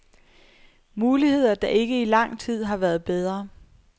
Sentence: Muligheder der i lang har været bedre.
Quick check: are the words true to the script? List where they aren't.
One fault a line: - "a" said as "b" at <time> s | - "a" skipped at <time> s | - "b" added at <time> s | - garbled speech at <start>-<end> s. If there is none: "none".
- "ikke" added at 1.7 s
- "tid" added at 2.4 s